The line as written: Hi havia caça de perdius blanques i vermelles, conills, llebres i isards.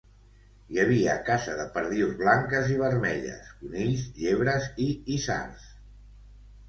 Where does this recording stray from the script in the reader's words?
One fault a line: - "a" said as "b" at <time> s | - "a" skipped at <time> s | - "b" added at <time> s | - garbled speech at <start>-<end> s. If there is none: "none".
none